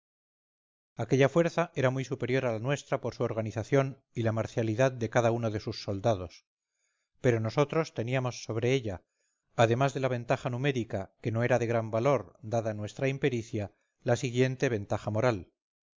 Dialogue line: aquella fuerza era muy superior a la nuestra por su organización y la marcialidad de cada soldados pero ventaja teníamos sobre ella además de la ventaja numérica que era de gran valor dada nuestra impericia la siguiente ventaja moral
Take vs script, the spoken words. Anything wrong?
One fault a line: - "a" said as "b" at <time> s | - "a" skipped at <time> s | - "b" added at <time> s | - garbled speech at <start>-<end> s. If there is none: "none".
- "uno de sus" added at 5.3 s
- "ventaja" said as "nosotros" at 7.4 s
- "no" added at 11.3 s